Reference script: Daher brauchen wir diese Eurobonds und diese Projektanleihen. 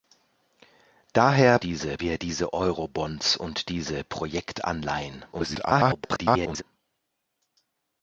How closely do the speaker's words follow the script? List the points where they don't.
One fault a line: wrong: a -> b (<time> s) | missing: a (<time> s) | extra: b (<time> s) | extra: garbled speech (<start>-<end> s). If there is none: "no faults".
wrong: brauchen -> diese (1.6 s)
extra: garbled speech (5.3-6.6 s)